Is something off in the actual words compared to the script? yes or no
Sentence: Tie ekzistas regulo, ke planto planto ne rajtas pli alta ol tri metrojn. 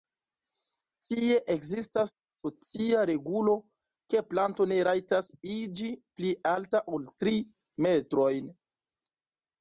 yes